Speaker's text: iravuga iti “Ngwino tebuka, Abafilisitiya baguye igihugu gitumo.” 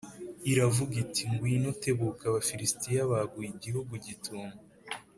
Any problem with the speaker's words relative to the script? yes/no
no